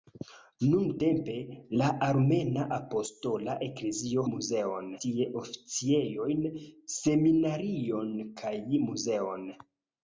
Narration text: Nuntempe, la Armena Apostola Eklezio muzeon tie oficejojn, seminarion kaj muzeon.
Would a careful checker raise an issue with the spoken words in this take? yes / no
no